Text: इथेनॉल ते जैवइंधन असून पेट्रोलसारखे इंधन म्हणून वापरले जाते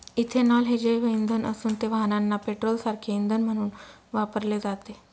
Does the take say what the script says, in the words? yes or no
no